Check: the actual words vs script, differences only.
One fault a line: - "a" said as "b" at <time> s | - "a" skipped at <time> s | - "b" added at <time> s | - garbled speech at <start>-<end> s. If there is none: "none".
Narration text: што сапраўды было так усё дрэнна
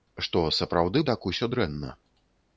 - "было" skipped at 1.0 s